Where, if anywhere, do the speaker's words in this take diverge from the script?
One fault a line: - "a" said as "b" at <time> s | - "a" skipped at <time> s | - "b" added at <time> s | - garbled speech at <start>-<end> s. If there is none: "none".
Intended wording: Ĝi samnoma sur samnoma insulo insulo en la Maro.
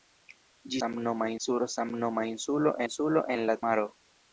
none